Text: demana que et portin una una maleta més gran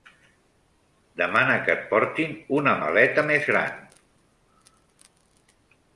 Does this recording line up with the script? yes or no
no